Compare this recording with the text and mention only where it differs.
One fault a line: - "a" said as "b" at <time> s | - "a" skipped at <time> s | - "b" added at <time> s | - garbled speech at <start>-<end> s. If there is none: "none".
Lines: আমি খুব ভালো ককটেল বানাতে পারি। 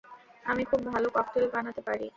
none